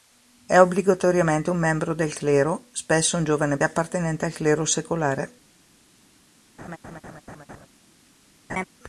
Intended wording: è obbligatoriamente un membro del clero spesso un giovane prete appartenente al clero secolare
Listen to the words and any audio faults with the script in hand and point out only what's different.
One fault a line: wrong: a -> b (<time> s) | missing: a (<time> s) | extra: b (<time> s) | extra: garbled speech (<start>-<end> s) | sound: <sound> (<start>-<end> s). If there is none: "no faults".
missing: prete (3.6 s)
sound: laugh (6.6-7.7 s)
sound: laugh (8.5-8.6 s)